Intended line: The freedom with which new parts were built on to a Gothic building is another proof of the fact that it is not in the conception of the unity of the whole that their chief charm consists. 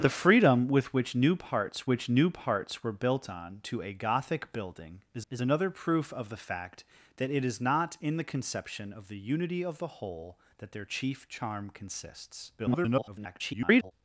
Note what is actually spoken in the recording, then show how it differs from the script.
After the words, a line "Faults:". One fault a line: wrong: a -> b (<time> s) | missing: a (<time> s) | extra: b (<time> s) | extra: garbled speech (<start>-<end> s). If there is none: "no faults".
The freedom with which new parts which new parts were built on to a Gothic building is is another proof of the fact that it is not in the conception of the unity of the whole that their chief charm consists. [garbled]
Faults:
extra: which new parts (1.9 s)
extra: is (5.3 s)
extra: garbled speech (12.6-13.9 s)